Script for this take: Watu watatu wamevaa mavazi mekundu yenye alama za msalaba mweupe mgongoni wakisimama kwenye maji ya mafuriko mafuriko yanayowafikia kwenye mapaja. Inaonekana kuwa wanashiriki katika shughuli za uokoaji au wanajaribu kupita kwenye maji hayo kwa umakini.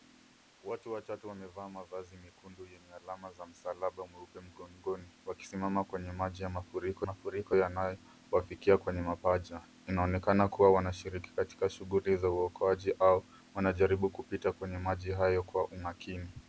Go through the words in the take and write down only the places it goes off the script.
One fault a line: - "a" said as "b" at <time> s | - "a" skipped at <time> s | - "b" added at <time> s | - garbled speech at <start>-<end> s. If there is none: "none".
none